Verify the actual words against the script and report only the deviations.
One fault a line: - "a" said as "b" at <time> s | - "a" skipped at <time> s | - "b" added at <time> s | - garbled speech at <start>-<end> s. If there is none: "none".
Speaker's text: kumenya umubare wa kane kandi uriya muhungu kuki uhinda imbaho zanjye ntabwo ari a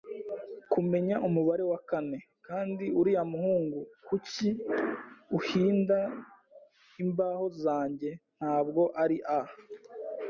none